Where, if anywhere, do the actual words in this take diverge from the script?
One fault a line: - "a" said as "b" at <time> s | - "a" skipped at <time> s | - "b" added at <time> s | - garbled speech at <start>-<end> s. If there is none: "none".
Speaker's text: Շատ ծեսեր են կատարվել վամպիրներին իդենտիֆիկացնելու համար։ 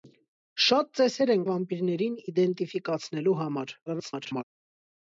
- "կատարվել" skipped at 1.4 s
- garbled speech at 3.9-4.4 s